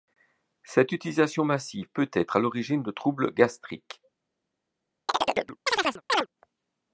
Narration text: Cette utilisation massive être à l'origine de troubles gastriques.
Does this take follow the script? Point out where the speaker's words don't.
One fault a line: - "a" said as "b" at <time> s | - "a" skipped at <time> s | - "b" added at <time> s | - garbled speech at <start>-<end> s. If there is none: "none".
- "peut" added at 1.9 s